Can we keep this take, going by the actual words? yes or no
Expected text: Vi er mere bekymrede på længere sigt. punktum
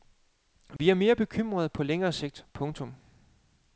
yes